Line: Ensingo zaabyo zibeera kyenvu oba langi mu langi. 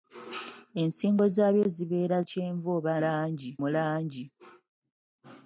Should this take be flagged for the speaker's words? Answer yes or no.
no